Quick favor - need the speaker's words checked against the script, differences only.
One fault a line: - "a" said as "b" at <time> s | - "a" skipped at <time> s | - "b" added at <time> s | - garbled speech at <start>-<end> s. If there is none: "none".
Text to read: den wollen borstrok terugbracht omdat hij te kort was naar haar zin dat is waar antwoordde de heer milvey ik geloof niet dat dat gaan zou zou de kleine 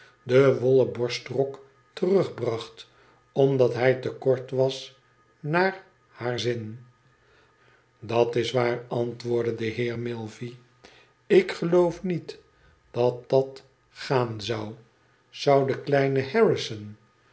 none